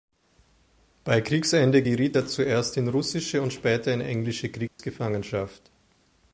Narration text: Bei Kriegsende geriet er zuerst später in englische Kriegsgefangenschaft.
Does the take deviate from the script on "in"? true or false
false